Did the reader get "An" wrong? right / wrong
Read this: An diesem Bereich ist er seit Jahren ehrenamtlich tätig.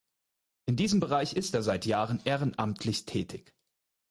wrong